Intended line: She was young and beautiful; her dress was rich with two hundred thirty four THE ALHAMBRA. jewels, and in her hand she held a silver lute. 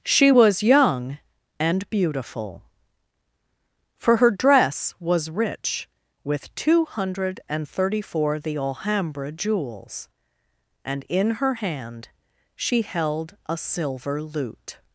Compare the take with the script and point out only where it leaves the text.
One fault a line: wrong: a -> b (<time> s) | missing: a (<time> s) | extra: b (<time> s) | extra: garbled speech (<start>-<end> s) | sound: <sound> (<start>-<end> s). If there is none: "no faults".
extra: for (4.0 s)
extra: and (7.5 s)